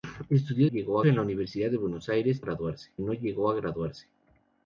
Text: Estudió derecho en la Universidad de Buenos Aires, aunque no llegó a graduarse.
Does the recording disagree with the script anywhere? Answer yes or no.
yes